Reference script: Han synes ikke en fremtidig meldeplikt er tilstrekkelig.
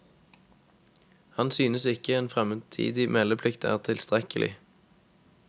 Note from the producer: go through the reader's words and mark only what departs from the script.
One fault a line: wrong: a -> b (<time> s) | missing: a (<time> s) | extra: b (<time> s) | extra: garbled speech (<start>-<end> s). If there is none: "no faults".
no faults